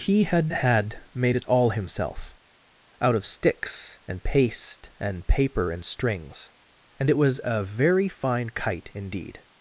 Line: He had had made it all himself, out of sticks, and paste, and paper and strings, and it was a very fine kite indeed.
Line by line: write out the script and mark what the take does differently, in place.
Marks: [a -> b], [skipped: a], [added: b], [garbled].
He had had made it all himself, out of sticks, and paste, and paper and strings, and it was a very fine kite indeed.